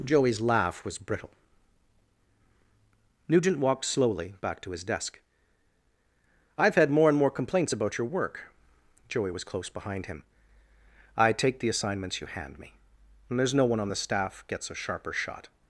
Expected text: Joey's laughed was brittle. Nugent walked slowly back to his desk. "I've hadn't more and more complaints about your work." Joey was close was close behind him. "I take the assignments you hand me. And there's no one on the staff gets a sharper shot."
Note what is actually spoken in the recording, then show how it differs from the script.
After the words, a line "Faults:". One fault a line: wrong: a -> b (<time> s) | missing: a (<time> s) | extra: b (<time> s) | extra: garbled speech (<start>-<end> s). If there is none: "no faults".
Joey's laugh was brittle. Nugent walked slowly back to his desk. "I've had more and more complaints about your work." Joey was close behind him. "I take the assignments you hand me. And there's no one on the staff gets a sharper shot."
Faults:
wrong: laughed -> laugh (0.4 s)
wrong: hadn't -> had (6.8 s)
missing: was close (9.7 s)